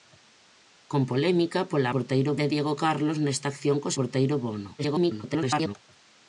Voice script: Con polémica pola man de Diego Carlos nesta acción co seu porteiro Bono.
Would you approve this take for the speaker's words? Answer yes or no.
no